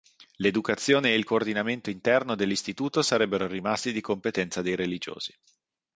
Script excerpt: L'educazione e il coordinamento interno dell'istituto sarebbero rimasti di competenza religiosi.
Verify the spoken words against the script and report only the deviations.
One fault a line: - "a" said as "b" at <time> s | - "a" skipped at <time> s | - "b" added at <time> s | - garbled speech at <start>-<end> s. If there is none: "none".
- "dei" added at 4.6 s